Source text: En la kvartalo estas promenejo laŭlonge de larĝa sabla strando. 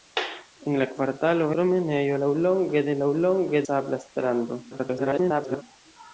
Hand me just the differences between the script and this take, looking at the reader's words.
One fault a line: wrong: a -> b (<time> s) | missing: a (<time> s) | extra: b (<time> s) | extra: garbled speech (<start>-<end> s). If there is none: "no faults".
missing: estas (1.5 s)
wrong: larĝa -> laŭlonge (3.0 s)
extra: garbled speech (4.7-5.6 s)